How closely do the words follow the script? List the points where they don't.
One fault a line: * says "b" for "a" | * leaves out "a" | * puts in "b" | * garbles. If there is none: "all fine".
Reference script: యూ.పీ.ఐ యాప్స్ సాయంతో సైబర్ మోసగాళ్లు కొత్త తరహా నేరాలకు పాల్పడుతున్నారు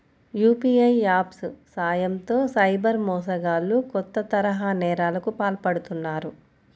all fine